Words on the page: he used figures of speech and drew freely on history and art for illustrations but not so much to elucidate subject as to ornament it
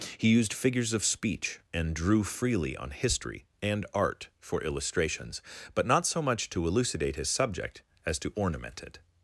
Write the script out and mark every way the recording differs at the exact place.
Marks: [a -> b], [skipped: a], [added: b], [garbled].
he used figures of speech and drew freely on history and art for illustrations but not so much to elucidate [added: his] subject as to ornament it